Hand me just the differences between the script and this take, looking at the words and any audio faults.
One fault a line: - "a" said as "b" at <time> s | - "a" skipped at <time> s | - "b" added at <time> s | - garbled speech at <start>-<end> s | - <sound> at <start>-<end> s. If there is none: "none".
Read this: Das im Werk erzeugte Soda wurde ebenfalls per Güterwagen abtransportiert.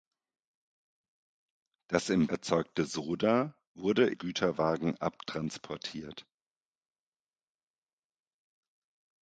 - "Werk" skipped at 2.3 s
- "ebenfalls per" skipped at 4.1 s